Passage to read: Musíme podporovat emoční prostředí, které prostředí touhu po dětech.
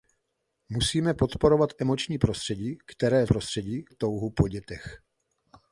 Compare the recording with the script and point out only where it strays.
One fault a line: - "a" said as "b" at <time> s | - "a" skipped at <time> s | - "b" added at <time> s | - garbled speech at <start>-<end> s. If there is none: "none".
none